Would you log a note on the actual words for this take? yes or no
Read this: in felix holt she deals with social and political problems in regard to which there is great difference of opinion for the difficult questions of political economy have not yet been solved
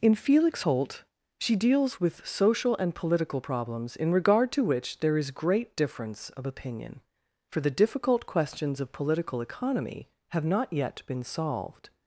no